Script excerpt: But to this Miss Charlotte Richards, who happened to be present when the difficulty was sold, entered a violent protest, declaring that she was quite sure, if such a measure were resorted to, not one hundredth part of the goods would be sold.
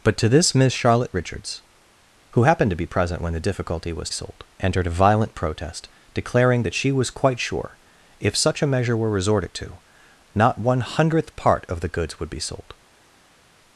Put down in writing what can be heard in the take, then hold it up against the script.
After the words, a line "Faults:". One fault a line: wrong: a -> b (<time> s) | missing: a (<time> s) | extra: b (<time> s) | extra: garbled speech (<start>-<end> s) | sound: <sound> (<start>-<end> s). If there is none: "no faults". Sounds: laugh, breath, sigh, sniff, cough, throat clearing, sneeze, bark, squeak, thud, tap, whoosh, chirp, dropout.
But to this Miss Charlotte Richards, who happened to be present when the difficulty was sold, entered a violent protest, declaring that she was quite sure, if such a measure were resorted to, not one hundredth part of the goods would be sold.
Faults:
no faults